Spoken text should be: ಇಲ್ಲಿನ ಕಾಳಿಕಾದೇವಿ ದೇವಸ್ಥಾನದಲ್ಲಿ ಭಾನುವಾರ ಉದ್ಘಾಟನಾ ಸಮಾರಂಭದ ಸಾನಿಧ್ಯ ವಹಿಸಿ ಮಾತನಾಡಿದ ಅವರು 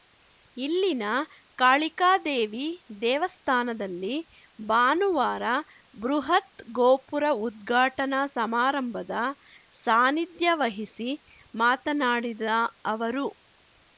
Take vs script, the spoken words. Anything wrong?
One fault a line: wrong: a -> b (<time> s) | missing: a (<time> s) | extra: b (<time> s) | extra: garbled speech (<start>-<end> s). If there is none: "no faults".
extra: ಬೃಹತ್ ಗೋಪುರ (6.0 s)